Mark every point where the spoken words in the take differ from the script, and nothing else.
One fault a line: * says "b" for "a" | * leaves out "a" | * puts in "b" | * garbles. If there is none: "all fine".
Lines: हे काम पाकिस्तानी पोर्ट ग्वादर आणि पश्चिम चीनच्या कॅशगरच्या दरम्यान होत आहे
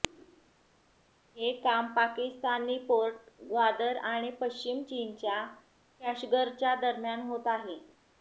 all fine